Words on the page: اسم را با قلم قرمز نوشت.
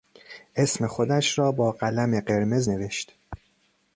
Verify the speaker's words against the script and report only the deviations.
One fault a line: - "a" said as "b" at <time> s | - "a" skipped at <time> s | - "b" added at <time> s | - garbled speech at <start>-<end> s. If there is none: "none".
- "خودش" added at 0.9 s